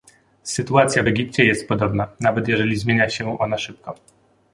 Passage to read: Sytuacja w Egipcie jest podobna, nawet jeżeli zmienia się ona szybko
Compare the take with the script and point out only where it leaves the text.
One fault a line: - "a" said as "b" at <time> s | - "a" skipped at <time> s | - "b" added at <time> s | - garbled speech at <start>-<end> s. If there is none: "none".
none